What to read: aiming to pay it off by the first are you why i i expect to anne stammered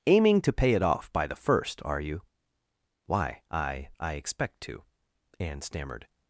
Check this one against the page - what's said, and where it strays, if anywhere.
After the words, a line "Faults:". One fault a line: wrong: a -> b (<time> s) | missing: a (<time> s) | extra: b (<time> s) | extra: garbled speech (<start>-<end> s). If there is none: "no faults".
aiming to pay it off by the first are you why i i expect to anne stammered
Faults:
no faults